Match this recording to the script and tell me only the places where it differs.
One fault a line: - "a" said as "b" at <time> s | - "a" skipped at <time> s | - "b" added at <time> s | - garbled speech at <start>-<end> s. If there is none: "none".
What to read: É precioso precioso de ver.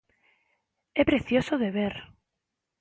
- "precioso" skipped at 1.5 s